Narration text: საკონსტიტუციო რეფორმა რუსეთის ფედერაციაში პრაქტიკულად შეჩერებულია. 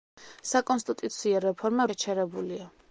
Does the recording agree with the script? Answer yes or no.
no